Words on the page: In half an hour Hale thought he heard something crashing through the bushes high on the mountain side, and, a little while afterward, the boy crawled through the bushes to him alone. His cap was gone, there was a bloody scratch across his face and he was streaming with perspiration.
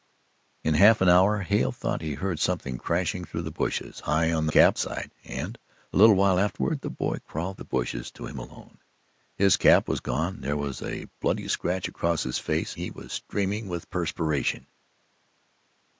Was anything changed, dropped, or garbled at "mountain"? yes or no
yes